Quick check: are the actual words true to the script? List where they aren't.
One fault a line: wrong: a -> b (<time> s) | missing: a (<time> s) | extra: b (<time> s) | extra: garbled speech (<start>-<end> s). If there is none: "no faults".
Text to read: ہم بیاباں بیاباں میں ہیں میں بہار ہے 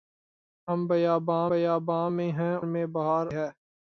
no faults